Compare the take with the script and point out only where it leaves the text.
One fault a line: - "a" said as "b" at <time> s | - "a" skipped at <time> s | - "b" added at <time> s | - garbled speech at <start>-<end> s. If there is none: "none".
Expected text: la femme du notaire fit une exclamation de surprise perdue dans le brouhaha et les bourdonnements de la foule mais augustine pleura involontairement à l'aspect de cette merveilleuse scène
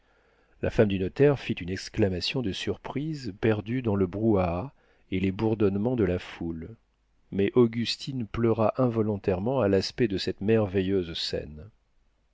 none